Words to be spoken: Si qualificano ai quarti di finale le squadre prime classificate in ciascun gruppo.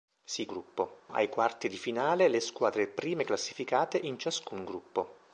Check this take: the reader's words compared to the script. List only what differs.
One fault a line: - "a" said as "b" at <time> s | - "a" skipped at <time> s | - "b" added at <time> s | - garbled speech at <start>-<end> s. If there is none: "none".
- "qualificano" said as "gruppo" at 0.5 s